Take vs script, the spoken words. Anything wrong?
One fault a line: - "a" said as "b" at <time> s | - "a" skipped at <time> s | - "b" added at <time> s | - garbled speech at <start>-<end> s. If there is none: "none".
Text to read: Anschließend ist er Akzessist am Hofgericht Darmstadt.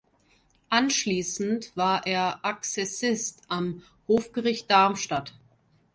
- "ist" said as "war" at 1.8 s